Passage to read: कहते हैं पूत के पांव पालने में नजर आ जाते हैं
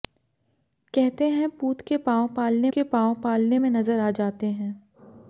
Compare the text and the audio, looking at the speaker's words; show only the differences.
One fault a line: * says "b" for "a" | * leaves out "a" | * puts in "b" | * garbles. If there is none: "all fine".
* puts in "के पांव पालने"